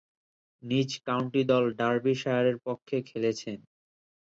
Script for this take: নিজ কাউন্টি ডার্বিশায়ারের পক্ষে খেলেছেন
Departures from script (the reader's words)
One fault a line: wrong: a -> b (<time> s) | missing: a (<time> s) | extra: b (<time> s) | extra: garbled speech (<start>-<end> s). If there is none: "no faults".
extra: দল (1.5 s)